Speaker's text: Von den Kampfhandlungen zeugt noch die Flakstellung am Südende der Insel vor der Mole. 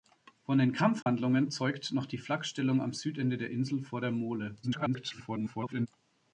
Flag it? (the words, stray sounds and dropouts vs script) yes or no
yes